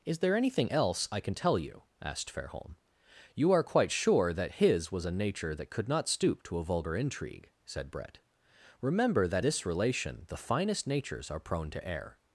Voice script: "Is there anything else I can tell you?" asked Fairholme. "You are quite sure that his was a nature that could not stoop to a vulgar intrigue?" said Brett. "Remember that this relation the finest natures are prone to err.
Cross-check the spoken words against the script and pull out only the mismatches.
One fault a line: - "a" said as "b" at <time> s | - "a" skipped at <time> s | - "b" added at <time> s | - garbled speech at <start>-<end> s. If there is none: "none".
none